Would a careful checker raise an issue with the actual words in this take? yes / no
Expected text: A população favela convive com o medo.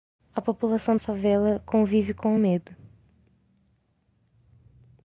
no